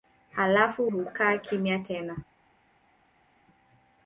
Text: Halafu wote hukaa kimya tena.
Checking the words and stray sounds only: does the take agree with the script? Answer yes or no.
no